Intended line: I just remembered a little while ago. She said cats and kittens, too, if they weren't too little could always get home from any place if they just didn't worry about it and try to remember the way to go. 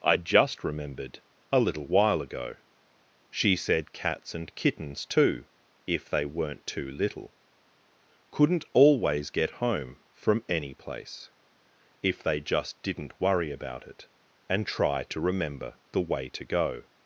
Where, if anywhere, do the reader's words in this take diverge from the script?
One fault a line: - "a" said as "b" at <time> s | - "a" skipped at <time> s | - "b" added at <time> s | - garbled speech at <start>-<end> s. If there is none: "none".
- "could" said as "couldn't" at 8.3 s